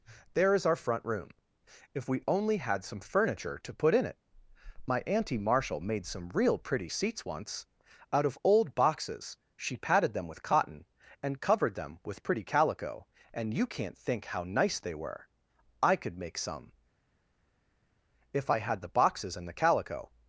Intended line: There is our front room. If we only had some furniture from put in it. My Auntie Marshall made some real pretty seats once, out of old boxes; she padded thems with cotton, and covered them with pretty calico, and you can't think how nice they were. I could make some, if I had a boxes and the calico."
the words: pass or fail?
fail